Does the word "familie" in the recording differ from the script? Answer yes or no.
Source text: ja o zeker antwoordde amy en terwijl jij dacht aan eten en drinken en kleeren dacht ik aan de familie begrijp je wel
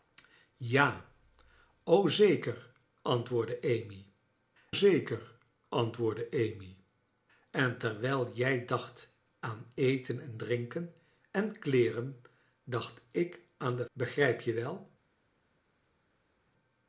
yes